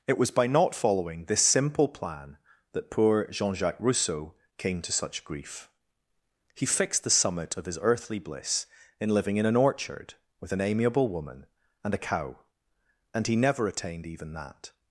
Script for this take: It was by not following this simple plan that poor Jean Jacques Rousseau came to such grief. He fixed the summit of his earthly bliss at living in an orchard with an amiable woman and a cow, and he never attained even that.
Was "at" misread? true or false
true